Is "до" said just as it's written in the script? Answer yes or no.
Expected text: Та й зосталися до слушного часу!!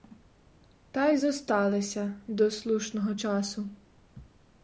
yes